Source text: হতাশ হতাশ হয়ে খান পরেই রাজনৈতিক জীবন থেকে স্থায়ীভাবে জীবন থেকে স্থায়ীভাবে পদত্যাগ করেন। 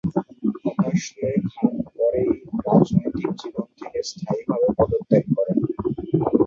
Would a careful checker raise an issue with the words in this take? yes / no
yes